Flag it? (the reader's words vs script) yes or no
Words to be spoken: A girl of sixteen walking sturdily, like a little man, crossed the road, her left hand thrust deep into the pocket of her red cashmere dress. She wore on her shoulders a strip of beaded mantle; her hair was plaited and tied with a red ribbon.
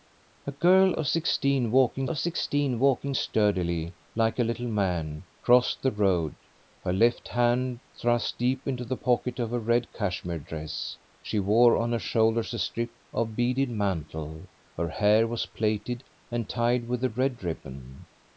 yes